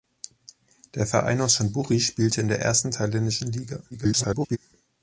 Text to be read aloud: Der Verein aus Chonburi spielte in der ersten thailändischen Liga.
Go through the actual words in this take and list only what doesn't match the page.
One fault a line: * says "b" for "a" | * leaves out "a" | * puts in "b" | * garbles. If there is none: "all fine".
* garbles